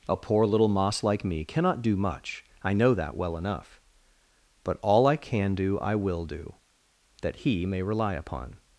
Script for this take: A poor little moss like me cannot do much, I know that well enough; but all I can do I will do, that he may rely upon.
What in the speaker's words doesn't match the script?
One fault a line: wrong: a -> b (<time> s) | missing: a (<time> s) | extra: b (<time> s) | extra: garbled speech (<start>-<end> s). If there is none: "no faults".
no faults